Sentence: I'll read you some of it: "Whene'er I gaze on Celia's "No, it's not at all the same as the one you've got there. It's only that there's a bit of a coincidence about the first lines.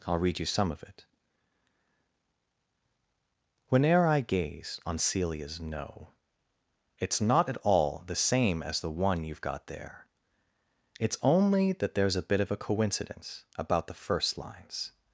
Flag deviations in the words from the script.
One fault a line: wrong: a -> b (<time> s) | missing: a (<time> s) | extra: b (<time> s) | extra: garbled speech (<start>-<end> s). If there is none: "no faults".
no faults